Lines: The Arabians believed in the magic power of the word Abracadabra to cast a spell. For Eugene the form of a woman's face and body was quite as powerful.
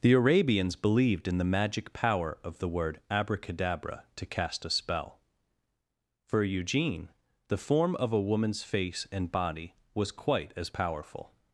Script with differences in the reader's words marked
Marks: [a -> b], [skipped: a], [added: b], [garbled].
The Arabians believed in the magic power of the word Abracadabra to cast a spell. For Eugene the form of a woman's face and body was quite as powerful.